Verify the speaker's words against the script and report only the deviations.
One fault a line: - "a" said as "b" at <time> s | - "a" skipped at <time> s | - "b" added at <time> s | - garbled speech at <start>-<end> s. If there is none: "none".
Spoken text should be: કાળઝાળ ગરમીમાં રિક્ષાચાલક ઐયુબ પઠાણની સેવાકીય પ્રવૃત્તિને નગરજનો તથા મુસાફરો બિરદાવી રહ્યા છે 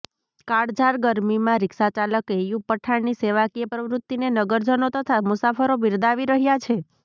none